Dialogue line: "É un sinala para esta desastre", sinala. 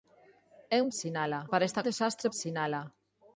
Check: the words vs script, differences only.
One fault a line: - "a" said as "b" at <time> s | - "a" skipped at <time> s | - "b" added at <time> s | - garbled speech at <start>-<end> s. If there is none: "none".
none